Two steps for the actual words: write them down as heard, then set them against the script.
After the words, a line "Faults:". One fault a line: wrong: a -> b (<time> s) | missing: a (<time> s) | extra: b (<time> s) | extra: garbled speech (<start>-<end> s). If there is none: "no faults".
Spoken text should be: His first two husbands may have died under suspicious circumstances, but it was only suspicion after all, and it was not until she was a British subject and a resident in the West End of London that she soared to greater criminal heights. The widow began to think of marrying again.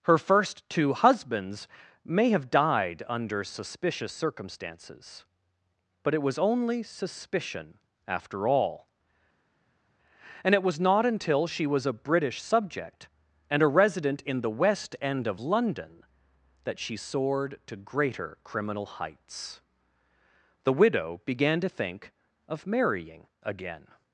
Her first two husbands may have died under suspicious circumstances, but it was only suspicion after all, and it was not until she was a British subject and a resident in the West End of London that she soared to greater criminal heights. The widow began to think of marrying again.
Faults:
wrong: His -> Her (0.1 s)